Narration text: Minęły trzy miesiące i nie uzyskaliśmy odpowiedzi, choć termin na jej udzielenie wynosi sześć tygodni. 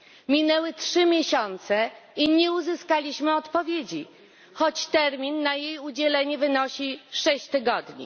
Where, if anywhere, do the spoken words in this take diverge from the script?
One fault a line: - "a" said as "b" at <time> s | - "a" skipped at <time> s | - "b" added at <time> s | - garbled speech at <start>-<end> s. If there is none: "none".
none